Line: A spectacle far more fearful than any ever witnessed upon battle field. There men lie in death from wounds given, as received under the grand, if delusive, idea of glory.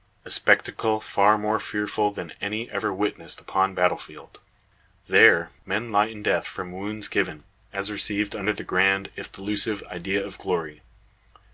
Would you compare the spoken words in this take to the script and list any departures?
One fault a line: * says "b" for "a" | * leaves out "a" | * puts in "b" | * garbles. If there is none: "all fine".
all fine